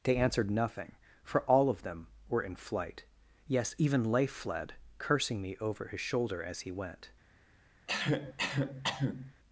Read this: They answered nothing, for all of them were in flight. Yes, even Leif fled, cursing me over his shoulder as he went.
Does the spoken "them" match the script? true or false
true